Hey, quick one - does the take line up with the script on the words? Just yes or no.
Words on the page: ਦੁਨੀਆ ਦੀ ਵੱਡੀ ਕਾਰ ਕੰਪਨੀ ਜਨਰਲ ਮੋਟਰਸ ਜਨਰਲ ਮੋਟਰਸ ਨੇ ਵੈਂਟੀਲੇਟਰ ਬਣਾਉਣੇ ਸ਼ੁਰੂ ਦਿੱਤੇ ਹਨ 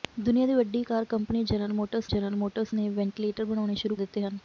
yes